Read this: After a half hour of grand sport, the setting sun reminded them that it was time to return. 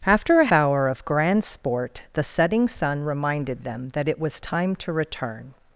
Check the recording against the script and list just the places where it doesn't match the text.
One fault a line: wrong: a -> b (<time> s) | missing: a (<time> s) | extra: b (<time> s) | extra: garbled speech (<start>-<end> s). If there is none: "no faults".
missing: half (0.5 s)